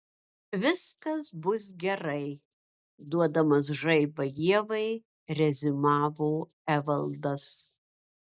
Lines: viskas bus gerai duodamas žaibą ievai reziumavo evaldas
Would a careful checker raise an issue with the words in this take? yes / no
no